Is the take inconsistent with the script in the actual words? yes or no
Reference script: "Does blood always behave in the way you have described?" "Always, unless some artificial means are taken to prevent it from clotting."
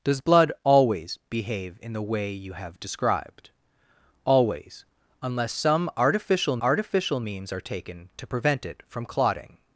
yes